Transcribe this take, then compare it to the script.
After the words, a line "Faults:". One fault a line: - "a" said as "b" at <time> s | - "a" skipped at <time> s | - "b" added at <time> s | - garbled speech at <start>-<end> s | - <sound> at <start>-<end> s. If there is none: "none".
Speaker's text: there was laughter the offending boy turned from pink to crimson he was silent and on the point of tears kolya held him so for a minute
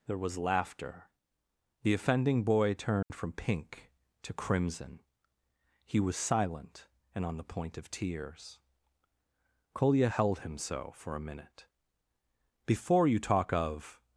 there was laughter the offending boy turned from pink to crimson he was silent and on the point of tears kolya held him so for a minute before you talk of
Faults:
- dropout at 3.0-3.1 s
- "before you talk of" added at 12.7 s